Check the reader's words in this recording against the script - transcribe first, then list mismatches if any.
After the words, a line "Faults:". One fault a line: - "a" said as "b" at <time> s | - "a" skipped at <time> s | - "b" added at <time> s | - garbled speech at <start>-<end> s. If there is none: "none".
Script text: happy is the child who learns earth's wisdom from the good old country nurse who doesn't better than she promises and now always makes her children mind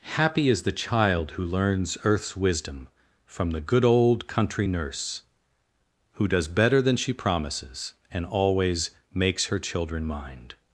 happy is the child who learns earth's wisdom from the good old country nurse who does better than she promises and always makes her children mind
Faults:
- "doesn't" said as "does" at 6.3 s
- "now" skipped at 8.3 s